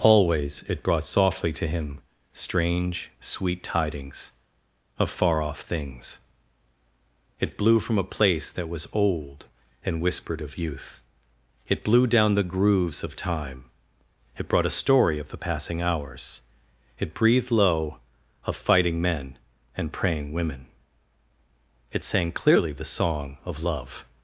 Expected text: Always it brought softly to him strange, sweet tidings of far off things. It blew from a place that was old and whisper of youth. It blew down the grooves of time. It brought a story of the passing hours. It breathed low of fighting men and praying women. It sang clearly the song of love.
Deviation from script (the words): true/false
true